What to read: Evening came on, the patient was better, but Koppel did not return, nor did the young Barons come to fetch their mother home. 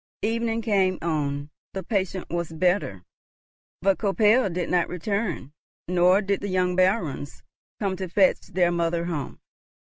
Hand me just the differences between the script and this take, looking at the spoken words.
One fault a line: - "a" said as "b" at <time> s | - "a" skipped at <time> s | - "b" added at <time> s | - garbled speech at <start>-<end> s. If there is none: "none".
none